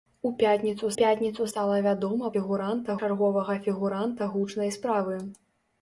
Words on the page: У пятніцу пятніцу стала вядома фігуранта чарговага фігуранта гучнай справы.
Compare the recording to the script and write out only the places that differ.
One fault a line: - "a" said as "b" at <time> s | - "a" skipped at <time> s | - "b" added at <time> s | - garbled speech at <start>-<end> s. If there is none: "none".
none